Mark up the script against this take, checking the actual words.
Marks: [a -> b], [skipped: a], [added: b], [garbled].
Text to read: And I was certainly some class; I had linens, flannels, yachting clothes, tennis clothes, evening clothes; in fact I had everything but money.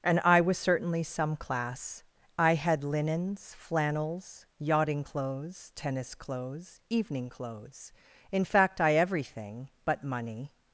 And I was certainly some class; I had linens, flannels, yachting clothes, tennis clothes, evening clothes; in fact I [skipped: had] everything but money.